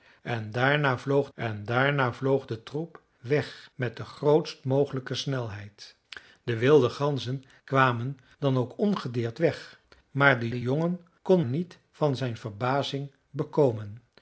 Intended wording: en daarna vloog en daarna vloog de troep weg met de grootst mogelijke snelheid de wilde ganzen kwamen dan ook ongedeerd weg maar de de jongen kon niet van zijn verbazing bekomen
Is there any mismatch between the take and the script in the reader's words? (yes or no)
no